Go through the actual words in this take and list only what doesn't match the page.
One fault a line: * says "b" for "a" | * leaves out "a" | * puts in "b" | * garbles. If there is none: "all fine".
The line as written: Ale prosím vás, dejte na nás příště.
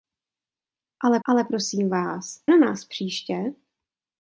* puts in "ale"
* leaves out "dejte"